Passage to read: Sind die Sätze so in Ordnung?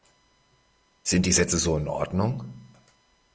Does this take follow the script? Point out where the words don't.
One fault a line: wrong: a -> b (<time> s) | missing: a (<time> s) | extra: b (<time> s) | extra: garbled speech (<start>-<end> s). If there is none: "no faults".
no faults